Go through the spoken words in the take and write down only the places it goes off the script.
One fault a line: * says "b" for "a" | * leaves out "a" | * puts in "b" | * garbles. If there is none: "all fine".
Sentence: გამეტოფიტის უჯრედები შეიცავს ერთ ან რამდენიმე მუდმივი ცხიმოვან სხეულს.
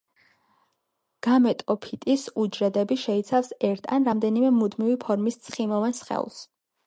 * puts in "ფორმის"